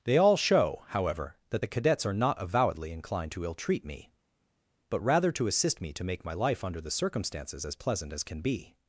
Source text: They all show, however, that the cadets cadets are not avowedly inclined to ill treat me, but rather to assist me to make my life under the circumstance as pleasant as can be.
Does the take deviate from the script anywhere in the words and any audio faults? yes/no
yes